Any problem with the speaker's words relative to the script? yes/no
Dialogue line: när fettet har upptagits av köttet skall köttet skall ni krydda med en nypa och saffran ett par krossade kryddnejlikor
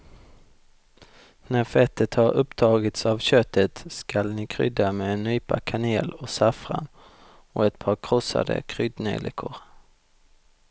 yes